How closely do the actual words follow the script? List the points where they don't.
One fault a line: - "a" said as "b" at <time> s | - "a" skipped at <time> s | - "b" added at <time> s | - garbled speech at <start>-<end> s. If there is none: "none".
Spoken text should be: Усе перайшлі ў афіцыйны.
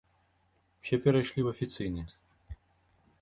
none